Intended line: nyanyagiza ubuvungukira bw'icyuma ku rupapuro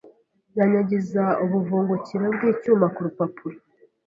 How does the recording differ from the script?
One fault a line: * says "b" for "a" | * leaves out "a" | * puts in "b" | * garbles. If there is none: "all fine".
all fine